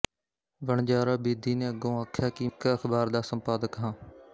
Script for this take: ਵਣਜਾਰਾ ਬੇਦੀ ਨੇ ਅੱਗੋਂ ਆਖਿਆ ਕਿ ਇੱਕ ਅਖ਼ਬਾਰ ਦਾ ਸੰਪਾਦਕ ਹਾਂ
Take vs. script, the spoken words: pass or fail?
pass